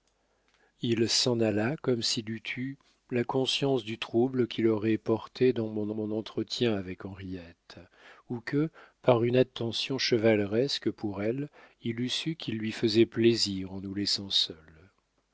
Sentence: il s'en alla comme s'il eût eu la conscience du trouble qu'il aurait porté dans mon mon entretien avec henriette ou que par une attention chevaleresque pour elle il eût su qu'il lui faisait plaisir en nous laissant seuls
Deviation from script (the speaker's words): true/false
false